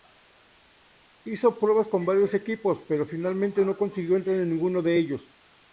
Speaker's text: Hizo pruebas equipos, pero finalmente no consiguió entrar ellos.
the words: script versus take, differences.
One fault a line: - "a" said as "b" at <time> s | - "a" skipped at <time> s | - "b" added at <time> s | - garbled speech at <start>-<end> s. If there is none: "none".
- "con varios" added at 1.9 s
- "en ninguno de" added at 4.4 s